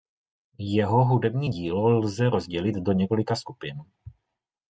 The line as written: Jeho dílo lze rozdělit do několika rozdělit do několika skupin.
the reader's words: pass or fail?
fail